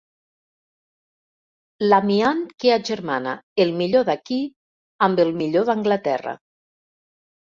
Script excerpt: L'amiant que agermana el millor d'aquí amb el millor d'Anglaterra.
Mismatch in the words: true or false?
false